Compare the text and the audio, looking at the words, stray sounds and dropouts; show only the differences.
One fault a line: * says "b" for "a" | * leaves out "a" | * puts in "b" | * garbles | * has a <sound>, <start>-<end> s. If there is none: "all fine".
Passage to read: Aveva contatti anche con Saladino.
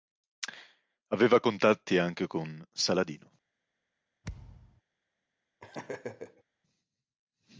* has a thud, 4.2-4.8 s
* has a laugh, 5.6-6.4 s